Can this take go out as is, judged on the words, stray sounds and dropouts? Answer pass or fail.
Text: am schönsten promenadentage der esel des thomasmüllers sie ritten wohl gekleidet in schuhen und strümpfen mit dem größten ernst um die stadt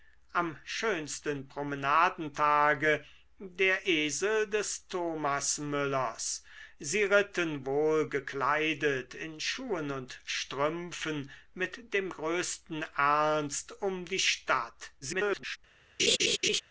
fail